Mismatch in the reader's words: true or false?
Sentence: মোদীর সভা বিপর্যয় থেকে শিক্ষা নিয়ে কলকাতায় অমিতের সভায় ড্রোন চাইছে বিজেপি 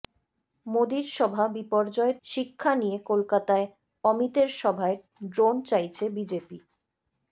true